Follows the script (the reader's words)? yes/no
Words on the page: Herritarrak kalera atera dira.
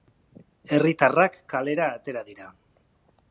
yes